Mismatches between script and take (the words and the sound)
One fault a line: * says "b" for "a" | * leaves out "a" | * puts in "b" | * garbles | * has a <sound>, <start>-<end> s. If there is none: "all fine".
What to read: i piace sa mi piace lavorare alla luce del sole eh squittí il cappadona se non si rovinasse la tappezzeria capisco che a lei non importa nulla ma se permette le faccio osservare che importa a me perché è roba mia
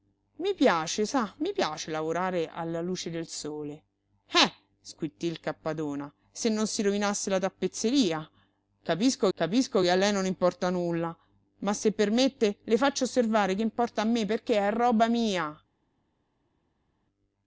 * puts in "capisco"